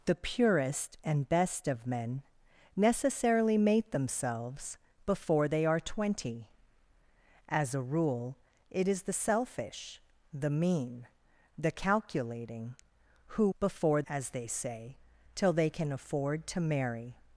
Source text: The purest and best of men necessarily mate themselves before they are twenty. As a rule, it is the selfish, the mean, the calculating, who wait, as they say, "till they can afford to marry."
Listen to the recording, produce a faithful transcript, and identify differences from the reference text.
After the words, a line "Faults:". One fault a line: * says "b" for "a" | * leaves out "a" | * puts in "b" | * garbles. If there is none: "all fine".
The purest and best of men necessarily mate themselves before they are twenty. As a rule, it is the selfish, the mean, the calculating, who before, as they say, "till they can afford to marry."
Faults:
* says "before" for "wait"